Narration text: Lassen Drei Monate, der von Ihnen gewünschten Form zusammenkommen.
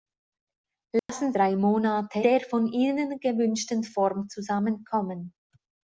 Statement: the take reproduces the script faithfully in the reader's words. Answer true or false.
true